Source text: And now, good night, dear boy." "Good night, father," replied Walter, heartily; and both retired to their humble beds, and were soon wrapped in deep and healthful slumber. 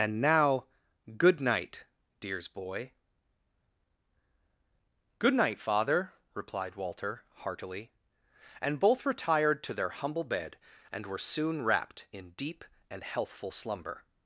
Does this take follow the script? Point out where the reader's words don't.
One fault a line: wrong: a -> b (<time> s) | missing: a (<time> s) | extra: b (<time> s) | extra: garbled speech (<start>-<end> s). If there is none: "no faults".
wrong: dear -> dears (2.2 s)
wrong: beds -> bed (10.2 s)